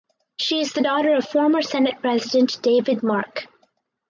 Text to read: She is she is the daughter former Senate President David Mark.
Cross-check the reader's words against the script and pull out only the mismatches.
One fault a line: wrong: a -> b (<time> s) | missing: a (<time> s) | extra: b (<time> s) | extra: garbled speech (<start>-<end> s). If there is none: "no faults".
missing: she is (0.7 s)
extra: of (1.1 s)